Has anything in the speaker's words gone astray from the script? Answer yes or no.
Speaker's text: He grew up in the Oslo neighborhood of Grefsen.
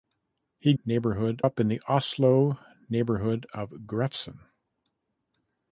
yes